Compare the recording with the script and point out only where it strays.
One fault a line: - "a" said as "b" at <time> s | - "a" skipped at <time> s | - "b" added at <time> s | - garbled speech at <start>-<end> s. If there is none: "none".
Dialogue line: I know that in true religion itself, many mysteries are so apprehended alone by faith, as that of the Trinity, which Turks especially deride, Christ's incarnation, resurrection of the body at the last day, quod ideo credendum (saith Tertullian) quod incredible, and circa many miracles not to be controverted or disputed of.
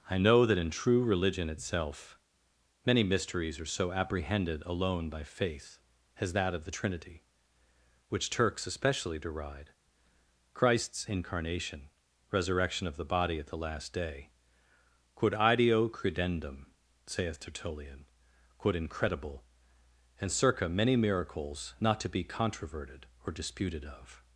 none